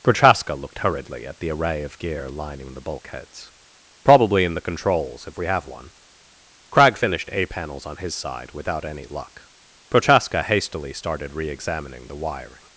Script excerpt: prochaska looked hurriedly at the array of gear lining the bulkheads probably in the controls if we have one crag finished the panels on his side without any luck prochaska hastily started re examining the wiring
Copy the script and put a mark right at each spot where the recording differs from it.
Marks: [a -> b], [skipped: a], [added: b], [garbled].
prochaska looked hurriedly at the array of gear lining the bulkheads probably in the controls if we have one crag finished [the -> a] panels on his side without any luck prochaska hastily started re examining the wiring